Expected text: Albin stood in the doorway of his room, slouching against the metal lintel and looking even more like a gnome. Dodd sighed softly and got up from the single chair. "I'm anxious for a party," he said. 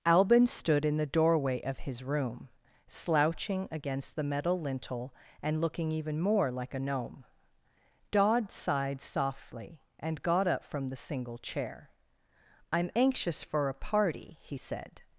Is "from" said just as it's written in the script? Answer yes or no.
yes